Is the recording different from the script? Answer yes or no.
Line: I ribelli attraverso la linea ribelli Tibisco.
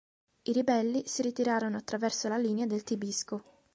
yes